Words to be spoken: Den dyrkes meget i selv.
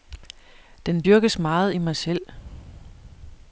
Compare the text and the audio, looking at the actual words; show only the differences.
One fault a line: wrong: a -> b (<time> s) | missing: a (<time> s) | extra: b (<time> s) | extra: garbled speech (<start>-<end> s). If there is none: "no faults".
extra: mig (1.8 s)